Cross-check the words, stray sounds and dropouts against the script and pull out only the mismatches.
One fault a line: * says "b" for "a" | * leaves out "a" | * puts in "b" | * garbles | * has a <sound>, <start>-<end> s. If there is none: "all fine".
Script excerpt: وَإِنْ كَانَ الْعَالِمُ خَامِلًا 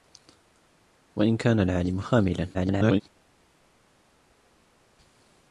* garbles